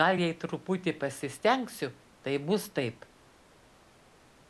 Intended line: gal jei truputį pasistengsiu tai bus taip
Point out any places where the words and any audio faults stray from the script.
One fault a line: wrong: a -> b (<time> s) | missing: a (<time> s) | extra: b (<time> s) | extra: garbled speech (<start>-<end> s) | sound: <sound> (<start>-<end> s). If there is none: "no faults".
no faults